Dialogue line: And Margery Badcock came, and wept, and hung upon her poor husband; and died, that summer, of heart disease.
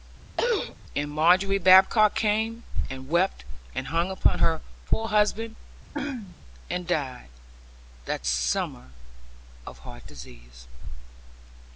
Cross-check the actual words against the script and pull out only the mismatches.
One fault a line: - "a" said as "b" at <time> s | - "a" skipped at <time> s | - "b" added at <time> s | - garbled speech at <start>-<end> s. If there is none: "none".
none